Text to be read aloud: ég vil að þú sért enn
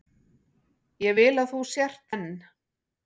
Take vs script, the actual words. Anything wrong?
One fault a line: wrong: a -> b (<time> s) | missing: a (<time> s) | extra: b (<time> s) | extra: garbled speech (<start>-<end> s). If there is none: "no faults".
no faults